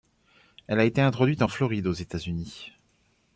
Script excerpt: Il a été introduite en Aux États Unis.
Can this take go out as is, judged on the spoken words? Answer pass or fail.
fail